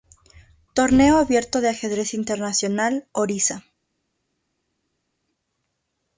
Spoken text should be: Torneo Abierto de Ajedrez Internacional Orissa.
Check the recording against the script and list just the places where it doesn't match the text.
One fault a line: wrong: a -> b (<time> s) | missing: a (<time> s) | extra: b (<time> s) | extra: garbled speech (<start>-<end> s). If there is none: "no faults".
no faults